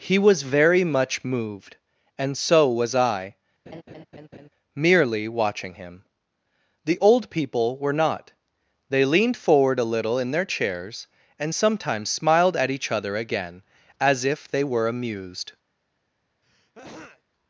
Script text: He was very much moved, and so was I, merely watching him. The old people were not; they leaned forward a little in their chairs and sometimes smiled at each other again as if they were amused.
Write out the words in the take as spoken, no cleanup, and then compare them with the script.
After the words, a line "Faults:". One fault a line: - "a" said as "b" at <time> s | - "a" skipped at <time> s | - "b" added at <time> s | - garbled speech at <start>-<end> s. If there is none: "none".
He was very much moved, and so was I, merely watching him. The old people were not; they leaned forward a little in their chairs and sometimes smiled at each other again as if they were amused.
Faults:
none